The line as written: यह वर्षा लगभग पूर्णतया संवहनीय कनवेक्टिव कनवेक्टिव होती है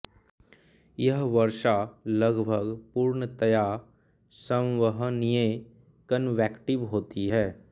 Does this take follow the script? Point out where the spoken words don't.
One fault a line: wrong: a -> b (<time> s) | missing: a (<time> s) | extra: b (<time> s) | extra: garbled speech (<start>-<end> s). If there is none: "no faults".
missing: कनवेक्टिव (6.8 s)